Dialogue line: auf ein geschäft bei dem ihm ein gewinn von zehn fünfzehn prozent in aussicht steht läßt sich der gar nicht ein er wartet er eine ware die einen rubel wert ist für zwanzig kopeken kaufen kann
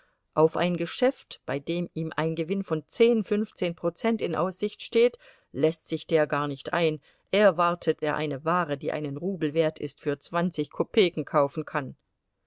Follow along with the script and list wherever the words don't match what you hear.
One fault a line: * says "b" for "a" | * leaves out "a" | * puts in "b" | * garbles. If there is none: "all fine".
all fine